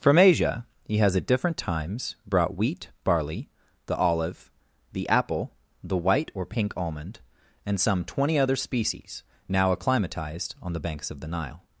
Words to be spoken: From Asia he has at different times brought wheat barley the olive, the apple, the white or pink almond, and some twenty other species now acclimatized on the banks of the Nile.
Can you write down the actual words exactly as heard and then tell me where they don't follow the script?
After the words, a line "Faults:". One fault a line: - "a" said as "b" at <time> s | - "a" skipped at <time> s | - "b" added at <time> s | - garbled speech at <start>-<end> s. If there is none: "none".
From Asia he has at different times brought wheat barley the olive, the apple, the white or pink almond, and some twenty other species now acclimatized on the banks of the Nile.
Faults:
none